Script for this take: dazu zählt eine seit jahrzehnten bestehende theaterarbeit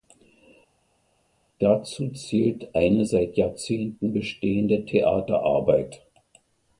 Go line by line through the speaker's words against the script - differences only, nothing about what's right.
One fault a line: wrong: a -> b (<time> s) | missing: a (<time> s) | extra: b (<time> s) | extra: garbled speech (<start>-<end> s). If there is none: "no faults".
no faults